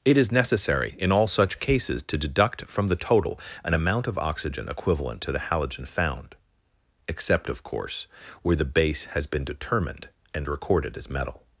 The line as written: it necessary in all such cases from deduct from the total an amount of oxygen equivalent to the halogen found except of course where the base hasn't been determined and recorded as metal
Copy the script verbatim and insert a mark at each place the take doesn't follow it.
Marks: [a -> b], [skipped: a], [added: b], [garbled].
it [added: is] necessary in all such cases [from -> to] deduct from the total an amount of oxygen equivalent to the halogen found except of course where the base [hasn't -> has] been determined and recorded as metal